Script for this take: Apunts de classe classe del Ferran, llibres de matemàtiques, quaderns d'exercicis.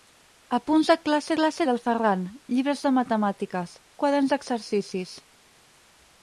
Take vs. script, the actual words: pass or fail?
pass